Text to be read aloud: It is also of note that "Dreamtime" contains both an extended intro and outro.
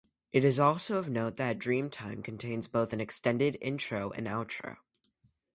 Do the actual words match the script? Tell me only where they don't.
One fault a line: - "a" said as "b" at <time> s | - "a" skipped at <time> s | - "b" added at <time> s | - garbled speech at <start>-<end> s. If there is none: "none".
none